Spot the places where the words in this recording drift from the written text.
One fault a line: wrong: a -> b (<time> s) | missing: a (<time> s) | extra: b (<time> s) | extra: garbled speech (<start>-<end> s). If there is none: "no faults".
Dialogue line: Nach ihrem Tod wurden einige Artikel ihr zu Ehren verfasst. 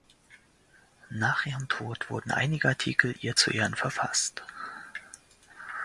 no faults